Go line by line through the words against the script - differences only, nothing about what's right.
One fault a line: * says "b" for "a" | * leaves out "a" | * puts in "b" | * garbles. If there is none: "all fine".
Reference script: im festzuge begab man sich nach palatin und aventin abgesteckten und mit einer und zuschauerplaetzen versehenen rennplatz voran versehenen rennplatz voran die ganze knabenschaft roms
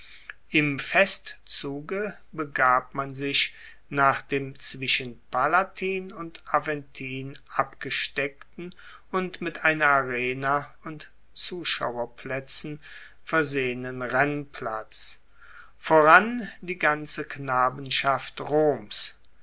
* puts in "dem zwischen"
* puts in "arena"
* leaves out "versehenen rennplatz voran"